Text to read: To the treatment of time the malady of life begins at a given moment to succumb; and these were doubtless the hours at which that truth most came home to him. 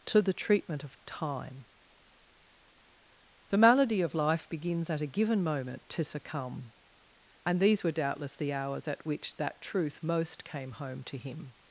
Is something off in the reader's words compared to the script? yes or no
no